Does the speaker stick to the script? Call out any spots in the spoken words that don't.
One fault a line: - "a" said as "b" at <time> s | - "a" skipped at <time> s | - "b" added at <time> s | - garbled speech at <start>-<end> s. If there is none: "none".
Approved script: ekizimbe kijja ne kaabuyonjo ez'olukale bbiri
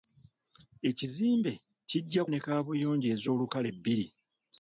none